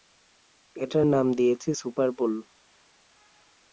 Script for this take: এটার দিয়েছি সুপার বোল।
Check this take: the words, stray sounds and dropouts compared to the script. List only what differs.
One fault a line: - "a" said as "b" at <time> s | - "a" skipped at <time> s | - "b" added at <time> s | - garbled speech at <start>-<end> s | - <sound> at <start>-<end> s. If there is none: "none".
- "নাম" added at 1.0 s